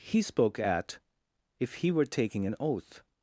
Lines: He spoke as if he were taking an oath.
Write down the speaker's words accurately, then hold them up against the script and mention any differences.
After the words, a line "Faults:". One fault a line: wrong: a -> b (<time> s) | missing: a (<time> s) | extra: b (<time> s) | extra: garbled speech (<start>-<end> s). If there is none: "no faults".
He spoke at if he were taking an oath.
Faults:
wrong: as -> at (0.6 s)